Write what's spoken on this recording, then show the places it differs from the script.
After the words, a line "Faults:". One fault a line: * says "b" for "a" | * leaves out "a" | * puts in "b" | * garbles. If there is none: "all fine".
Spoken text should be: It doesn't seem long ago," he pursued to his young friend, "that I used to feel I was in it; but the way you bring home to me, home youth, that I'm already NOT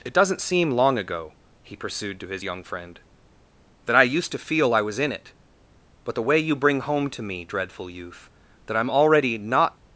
It doesn't seem long ago," he pursued to his young friend, "that I used to feel I was in it; but the way you bring home to me, dreadful youth, that I'm already NOT
Faults:
* says "dreadful" for "home"